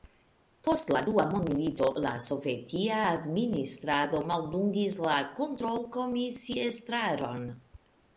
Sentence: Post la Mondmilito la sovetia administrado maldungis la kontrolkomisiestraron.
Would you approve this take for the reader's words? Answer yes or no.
no